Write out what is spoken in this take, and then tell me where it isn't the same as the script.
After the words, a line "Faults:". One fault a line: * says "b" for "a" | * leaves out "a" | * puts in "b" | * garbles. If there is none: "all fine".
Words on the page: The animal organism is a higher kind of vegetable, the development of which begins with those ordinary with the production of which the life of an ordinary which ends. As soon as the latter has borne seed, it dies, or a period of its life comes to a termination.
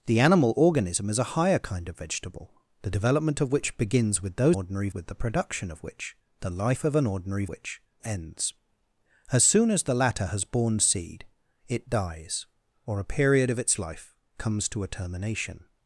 The animal organism is a higher kind of vegetable, the development of which begins with those ordinary with the production of which the life of an ordinary which ends. As soon as the latter has borne seed, it dies, or a period of its life comes to a termination.
Faults:
all fine